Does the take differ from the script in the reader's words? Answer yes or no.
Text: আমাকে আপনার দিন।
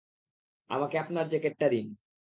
yes